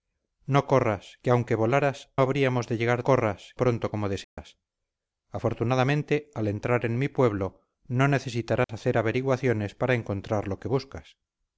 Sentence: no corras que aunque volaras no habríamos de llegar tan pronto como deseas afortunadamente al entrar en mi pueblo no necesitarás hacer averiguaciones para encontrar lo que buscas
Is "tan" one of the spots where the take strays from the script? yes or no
yes